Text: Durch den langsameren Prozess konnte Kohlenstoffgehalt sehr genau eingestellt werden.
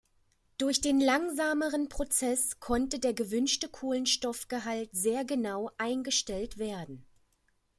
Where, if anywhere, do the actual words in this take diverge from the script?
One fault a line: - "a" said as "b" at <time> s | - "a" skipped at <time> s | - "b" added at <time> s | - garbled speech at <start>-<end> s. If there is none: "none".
- "der gewünschte" added at 3.0 s